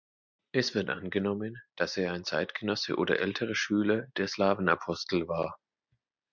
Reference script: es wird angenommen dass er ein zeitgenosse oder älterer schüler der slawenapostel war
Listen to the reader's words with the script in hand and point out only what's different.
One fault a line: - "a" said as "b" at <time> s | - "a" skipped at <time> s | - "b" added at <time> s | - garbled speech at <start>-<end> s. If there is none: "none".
none